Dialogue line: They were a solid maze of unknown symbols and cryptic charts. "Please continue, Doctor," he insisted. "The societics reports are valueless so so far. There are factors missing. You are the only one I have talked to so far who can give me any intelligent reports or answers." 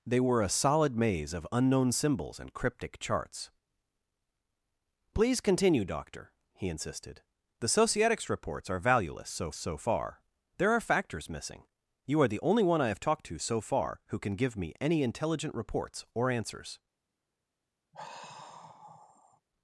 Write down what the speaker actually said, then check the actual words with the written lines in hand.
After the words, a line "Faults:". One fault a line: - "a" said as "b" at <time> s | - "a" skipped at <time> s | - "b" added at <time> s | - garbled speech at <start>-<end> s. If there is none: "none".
They were a solid maze of unknown symbols and cryptic charts. "Please continue, Doctor," he insisted. "The societics reports are valueless so so far. There are factors missing. You are the only one I have talked to so far who can give me any intelligent reports or answers."
Faults:
none